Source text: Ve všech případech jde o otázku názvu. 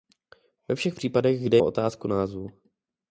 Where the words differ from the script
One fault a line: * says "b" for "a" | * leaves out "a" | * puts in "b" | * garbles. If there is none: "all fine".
all fine